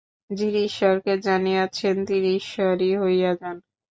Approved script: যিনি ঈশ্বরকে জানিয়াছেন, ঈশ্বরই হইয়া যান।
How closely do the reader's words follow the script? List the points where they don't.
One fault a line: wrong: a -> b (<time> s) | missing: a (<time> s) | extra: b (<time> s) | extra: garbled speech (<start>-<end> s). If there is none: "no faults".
extra: তিনি (2.1 s)